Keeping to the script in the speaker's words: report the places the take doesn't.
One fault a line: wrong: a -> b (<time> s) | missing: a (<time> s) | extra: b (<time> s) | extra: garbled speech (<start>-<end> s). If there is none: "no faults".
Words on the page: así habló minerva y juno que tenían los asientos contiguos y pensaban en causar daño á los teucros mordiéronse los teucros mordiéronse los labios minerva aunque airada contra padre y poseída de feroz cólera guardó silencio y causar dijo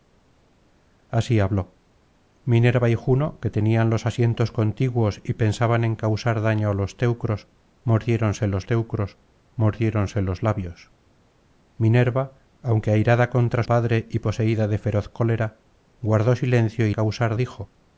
no faults